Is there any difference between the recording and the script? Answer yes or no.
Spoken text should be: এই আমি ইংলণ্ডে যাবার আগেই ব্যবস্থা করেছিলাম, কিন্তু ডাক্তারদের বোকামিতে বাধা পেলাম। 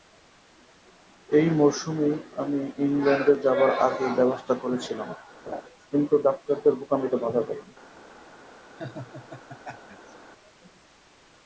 yes